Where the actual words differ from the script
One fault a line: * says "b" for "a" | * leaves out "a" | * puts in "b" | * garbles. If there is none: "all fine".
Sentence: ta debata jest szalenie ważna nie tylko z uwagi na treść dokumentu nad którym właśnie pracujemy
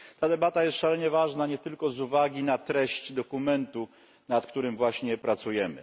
all fine